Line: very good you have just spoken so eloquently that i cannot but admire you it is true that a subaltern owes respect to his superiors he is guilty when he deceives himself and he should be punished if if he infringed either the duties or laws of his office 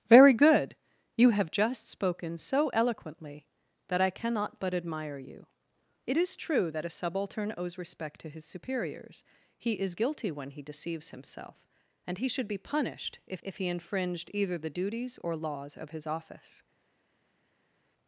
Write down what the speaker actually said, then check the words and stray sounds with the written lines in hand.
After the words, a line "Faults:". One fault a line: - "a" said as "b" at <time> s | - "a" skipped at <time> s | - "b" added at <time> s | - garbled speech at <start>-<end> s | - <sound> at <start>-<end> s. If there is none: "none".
very good you have just spoken so eloquently that i cannot but admire you it is true that a subaltern owes respect to his superiors he is guilty when he deceives himself and he should be punished if if he infringed either the duties or laws of his office
Faults:
none